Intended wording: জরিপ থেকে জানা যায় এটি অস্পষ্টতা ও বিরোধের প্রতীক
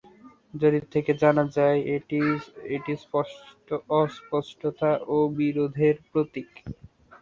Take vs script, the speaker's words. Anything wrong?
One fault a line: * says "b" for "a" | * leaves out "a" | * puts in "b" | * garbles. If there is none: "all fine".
all fine